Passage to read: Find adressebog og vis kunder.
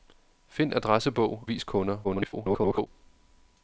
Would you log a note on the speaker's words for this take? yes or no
yes